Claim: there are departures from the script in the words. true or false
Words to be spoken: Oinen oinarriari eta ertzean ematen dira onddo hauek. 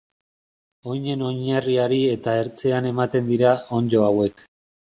false